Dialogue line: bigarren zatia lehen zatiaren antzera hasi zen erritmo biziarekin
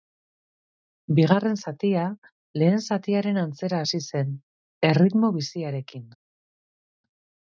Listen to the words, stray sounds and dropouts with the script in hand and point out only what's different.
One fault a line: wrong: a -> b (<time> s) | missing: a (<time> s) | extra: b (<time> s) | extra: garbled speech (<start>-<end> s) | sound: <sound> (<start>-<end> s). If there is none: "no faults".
no faults